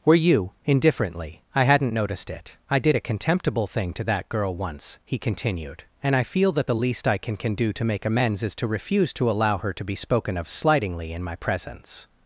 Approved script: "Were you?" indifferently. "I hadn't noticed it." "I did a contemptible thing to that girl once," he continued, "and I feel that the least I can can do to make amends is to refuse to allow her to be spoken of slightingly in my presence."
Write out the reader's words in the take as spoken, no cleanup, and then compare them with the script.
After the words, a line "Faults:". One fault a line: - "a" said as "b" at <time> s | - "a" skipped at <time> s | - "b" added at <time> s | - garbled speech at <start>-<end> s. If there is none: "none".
"Were you?" indifferently. "I hadn't noticed it." "I did a contemptible thing to that girl once," he continued, "and I feel that the least I can can do to make amends is to refuse to allow her to be spoken of slightingly in my presence."
Faults:
none